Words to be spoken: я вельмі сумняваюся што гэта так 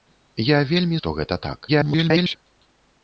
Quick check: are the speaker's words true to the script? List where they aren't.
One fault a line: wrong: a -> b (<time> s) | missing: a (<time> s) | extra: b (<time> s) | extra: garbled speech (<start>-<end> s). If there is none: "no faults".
missing: сумняваюся (1.0 s)
extra: garbled speech (1.7-2.4 s)